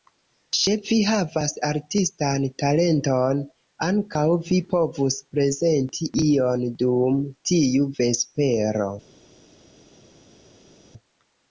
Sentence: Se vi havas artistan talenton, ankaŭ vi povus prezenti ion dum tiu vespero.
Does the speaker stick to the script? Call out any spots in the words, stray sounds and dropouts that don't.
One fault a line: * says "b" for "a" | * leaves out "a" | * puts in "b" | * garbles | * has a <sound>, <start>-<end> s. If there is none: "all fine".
all fine